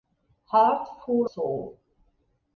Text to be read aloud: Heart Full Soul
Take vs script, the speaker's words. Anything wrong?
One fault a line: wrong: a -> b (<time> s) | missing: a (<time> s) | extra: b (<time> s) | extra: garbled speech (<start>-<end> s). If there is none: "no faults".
no faults